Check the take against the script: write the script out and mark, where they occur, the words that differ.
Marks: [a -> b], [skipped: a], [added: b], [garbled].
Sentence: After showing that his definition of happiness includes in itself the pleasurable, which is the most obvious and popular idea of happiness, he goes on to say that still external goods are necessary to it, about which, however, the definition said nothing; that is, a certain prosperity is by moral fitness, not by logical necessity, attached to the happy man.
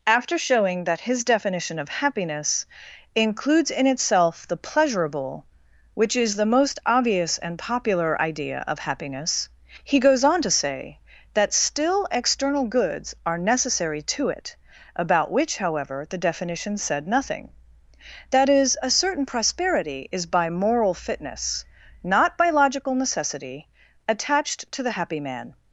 After showing that his definition of happiness includes in itself the pleasurable, which is the most obvious and popular idea of happiness, he goes on to say that still external goods are necessary to it, about which, however, the definition said nothing; that is, a certain prosperity is by moral fitness, not by logical necessity, attached to the happy man.